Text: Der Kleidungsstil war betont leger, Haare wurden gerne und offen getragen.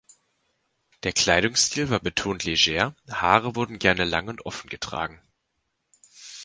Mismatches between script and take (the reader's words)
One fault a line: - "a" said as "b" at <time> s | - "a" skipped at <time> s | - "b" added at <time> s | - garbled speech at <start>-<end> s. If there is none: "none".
- "lang" added at 4.0 s